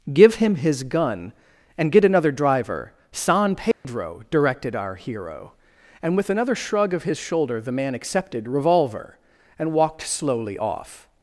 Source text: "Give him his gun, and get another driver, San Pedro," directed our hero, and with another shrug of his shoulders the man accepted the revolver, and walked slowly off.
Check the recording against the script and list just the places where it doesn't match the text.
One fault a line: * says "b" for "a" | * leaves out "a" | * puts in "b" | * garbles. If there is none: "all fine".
* says "shoulder" for "shoulders"
* leaves out "the"